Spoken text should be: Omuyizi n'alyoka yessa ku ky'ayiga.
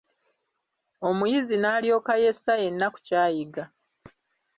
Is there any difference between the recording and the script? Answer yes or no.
yes